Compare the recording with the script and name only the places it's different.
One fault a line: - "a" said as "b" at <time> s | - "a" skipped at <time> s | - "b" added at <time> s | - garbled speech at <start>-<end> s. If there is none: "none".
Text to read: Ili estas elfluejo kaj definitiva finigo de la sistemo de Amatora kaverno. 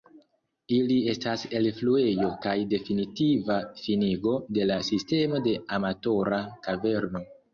none